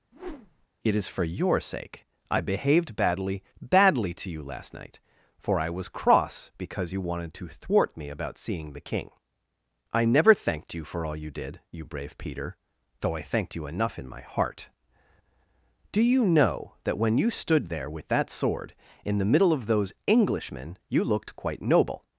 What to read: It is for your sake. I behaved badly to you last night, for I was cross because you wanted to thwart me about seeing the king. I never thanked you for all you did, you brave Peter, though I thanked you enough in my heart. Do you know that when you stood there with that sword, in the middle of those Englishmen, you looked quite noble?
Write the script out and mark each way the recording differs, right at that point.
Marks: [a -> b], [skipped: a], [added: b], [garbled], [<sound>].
[whoosh] It is for your sake. I behaved badly [added: badly] to you last night, for I was cross because you wanted to thwart me about seeing the king. I never thanked you for all you did, you brave Peter, though I thanked you enough in my heart. Do you know that when you stood there with that sword, in the middle of those Englishmen, you looked quite noble?